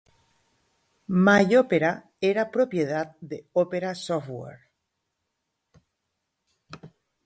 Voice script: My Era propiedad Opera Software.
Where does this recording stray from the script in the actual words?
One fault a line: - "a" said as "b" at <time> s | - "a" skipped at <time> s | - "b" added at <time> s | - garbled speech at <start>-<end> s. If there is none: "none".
- "Opera" added at 1.6 s
- "de" added at 3.2 s